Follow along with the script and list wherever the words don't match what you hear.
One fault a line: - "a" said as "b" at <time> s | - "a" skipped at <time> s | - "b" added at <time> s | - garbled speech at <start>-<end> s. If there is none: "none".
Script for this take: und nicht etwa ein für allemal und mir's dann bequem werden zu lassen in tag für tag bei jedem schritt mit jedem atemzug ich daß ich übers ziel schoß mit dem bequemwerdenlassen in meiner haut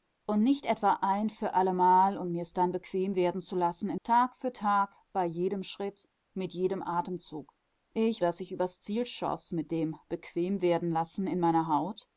none